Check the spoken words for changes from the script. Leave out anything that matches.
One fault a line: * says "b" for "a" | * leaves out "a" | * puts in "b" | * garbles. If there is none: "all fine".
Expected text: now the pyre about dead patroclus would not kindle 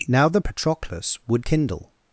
* leaves out "pyre about dead"
* leaves out "not"